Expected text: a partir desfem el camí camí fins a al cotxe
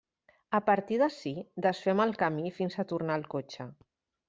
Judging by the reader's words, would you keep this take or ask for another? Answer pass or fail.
fail